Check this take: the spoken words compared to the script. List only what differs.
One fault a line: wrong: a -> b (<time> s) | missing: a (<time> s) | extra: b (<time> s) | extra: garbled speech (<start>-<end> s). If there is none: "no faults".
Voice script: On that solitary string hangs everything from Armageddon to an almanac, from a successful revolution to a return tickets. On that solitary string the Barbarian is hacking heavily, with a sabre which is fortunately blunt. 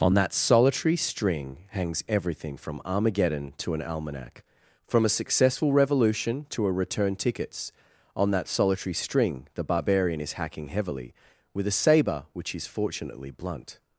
no faults